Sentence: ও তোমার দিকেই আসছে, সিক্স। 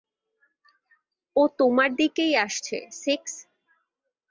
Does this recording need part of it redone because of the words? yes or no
no